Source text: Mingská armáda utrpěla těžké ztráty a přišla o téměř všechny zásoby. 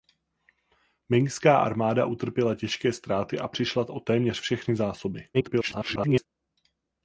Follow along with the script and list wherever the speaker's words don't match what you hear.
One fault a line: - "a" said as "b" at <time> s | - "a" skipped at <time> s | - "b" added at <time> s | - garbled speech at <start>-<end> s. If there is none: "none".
- garbled speech at 5.3-6.3 s